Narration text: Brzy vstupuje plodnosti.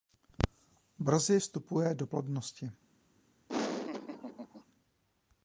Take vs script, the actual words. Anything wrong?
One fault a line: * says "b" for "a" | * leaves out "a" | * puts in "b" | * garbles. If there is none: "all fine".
* puts in "do"